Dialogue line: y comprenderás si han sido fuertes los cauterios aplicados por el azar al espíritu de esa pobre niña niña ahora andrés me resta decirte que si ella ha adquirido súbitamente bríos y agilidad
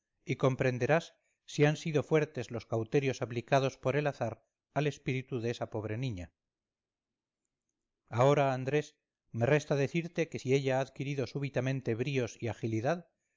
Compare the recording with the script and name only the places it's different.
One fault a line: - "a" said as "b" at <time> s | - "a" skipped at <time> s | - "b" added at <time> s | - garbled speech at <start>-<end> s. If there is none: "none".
- "niña" skipped at 6.3 s